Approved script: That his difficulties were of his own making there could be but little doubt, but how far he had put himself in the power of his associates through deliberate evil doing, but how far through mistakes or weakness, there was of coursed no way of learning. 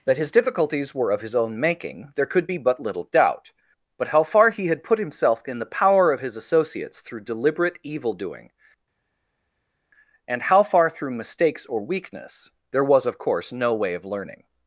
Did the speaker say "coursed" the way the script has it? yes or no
no